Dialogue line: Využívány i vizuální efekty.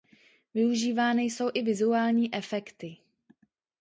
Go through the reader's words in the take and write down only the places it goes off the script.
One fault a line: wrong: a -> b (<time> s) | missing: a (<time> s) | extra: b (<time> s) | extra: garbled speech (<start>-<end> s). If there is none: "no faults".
extra: jsou (1.2 s)